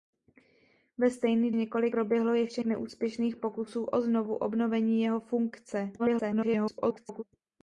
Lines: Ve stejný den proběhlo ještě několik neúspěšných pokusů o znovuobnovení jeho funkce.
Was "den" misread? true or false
true